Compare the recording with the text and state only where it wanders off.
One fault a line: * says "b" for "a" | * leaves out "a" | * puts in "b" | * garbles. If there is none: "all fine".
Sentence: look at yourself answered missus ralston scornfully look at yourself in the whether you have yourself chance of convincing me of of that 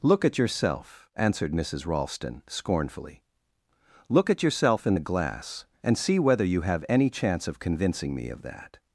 * puts in "glass and see"
* says "any" for "yourself"
* leaves out "of"